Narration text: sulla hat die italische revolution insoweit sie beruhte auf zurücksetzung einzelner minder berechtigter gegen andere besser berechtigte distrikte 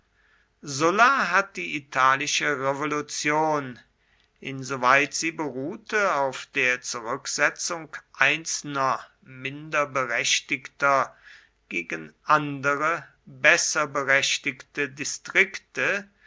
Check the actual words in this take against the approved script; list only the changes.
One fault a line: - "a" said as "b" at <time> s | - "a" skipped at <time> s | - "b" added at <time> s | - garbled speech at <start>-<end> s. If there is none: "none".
- "der" added at 6.5 s